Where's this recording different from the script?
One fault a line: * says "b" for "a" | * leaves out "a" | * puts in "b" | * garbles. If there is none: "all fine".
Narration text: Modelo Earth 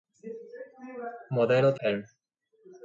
all fine